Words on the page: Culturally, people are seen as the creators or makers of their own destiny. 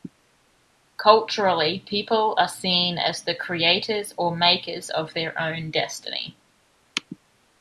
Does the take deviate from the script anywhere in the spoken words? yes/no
no